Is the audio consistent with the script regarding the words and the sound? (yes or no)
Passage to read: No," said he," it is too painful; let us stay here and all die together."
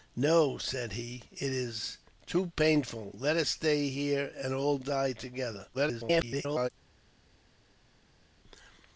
no